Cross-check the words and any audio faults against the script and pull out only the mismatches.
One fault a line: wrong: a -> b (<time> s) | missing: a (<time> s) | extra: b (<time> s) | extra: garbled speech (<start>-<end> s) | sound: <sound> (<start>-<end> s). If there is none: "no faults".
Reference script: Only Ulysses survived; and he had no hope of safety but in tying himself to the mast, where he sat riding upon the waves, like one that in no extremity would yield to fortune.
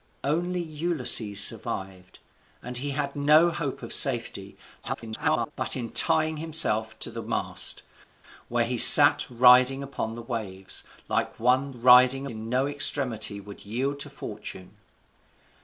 extra: garbled speech (4.8-5.5 s)
wrong: that -> riding (11.7 s)